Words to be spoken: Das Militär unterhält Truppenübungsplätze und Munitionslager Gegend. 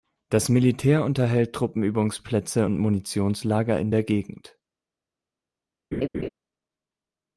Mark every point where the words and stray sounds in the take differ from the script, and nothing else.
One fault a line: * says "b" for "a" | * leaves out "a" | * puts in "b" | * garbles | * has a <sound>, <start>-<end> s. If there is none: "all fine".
* puts in "in der"
* has a laugh, 5.9-6.3 s